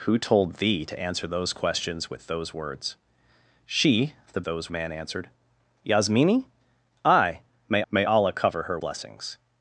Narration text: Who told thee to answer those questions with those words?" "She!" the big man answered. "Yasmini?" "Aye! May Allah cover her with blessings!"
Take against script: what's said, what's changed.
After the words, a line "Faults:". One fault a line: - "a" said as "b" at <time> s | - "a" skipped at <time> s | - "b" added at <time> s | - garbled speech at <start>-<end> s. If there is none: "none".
Who told thee to answer those questions with those words?" "She!" the those man answered. "Yasmini?" "Aye! May may Allah cover her blessings!"
Faults:
- "big" said as "those" at 4.4 s
- "may" added at 7.9 s
- "with" skipped at 8.8 s